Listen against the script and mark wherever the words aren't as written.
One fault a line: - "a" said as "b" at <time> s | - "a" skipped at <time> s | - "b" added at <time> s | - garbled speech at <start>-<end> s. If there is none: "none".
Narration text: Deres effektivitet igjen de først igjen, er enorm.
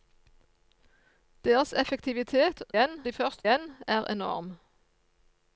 none